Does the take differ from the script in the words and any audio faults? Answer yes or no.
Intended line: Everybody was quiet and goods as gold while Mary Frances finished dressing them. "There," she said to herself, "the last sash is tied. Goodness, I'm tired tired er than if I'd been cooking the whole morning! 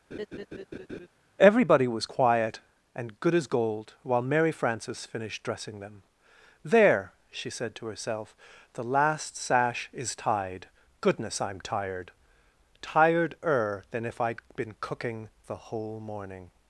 yes